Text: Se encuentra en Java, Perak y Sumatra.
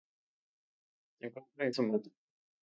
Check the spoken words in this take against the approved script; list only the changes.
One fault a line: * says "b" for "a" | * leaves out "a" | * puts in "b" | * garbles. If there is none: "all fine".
* leaves out "Java Perak y"